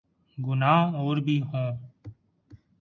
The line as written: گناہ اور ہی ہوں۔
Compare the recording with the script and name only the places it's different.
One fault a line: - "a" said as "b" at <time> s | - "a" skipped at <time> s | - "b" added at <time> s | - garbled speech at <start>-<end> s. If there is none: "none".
- "ہی" said as "بھی" at 1.2 s